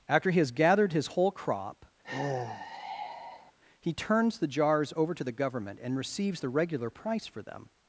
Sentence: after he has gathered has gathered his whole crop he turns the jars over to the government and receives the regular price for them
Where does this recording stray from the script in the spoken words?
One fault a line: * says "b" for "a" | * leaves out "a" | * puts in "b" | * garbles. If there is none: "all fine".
* leaves out "has gathered"